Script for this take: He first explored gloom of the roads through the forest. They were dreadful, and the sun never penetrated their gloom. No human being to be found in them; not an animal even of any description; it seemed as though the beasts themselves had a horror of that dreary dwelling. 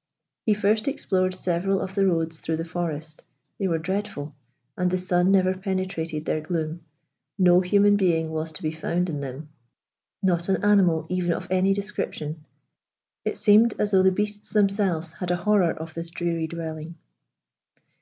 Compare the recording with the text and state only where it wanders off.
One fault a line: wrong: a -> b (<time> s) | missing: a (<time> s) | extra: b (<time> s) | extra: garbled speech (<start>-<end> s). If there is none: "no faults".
wrong: gloom -> several (1.4 s)
extra: was (8.3 s)
wrong: that -> this (15.9 s)